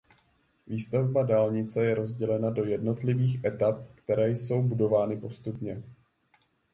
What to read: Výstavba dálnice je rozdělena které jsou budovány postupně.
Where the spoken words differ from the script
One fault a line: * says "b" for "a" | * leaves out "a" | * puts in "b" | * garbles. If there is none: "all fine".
* puts in "do jednotlivých etap"